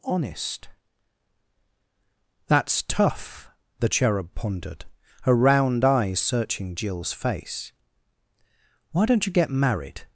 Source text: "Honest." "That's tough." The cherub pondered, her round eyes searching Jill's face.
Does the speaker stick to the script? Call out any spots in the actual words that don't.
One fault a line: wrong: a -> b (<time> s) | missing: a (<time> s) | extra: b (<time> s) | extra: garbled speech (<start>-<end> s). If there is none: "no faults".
extra: Why don't you get married (8.9 s)